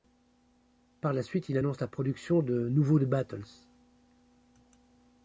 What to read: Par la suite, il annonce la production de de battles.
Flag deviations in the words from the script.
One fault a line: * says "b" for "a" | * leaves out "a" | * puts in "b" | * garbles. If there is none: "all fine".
* puts in "nouveaux"